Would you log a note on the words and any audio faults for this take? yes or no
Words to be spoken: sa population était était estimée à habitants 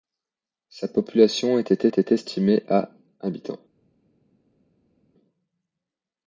no